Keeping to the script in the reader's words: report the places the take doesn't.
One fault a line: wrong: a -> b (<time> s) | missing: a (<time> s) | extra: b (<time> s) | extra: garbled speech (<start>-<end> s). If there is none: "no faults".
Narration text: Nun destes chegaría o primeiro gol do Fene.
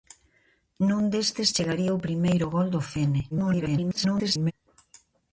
extra: garbled speech (3.3-4.5 s)